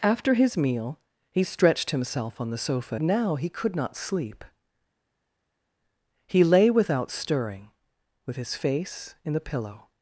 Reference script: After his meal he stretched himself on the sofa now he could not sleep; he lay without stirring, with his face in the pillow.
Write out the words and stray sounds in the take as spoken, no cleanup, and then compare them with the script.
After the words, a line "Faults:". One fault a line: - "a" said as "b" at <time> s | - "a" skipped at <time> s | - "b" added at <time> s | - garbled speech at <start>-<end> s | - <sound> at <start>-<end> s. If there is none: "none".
After his meal he stretched himself on the sofa now he could not sleep; he lay without stirring, with his face in the pillow.
Faults:
none